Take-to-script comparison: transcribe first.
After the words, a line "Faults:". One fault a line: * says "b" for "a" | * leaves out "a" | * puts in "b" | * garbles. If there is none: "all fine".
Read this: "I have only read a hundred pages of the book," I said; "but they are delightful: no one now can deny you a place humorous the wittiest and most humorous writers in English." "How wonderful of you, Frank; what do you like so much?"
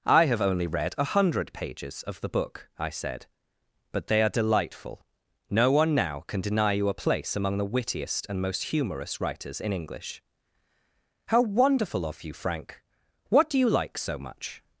"I have only read a hundred pages of the book," I said; "but they are delightful: no one now can deny you a place among the wittiest and most humorous writers in English." "How wonderful of you, Frank; what do you like so much?"
Faults:
* says "among" for "humorous"